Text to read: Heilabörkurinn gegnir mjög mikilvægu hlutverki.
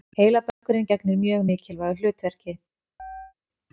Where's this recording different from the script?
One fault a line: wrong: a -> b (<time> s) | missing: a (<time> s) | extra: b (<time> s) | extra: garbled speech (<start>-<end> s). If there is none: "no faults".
no faults